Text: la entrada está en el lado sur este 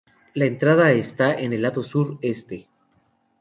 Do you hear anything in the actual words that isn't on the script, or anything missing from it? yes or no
no